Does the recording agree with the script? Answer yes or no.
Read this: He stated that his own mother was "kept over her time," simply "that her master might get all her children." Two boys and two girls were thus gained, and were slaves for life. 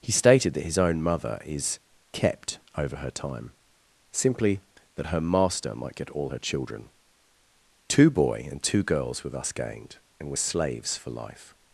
no